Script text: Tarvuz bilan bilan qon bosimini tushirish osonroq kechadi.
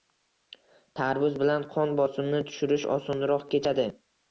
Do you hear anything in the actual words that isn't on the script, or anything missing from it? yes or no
yes